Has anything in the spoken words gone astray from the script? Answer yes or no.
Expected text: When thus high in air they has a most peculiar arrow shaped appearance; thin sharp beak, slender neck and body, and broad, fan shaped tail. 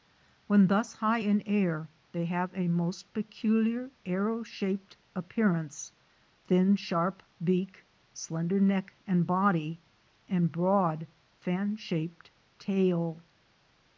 yes